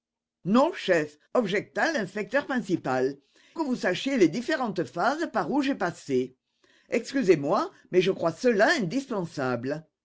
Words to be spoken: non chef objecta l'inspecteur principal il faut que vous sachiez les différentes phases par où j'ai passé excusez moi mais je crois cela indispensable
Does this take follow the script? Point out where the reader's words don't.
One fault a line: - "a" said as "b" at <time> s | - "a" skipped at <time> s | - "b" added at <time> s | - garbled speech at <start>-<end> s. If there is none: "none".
- "il faut" skipped at 3.1 s